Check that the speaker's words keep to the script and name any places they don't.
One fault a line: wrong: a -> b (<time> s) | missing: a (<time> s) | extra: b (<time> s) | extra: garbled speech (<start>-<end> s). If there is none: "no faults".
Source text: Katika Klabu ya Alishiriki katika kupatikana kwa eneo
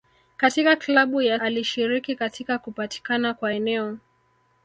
no faults